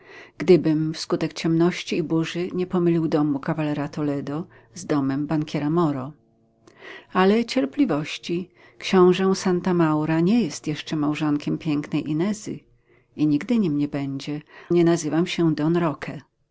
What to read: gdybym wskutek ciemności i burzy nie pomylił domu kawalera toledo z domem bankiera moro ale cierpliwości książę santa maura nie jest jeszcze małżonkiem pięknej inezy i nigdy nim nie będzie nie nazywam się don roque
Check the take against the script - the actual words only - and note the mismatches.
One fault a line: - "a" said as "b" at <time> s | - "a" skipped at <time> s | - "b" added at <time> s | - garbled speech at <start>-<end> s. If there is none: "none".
none